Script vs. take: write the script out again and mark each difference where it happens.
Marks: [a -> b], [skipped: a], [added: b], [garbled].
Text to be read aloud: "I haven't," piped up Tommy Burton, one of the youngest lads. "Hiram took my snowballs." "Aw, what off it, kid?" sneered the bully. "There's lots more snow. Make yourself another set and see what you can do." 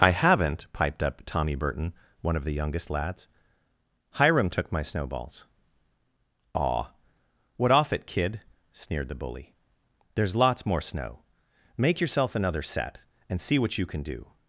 "I haven't," piped up Tommy Burton, one of the youngest lads. "Hiram took my snowballs." "Aw, what off it, kid?" sneered the bully. "There's lots more snow. Make yourself another set and see what you can do."